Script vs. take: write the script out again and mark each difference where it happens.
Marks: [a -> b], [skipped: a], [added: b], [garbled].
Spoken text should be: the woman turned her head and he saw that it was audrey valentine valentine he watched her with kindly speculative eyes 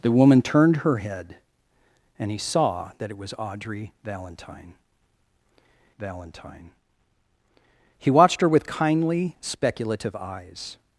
the woman turned her head and he saw that it was audrey valentine valentine he watched her with kindly speculative eyes